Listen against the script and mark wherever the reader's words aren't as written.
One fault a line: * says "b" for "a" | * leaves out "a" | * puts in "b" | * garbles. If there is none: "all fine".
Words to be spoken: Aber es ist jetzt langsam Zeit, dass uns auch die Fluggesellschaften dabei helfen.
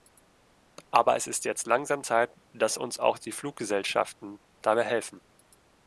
all fine